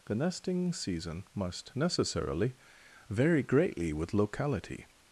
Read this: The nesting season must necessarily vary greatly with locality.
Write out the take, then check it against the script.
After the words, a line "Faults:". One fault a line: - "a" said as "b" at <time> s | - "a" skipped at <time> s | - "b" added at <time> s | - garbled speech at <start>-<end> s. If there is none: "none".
The nesting season must necessarily vary greatly with locality.
Faults:
none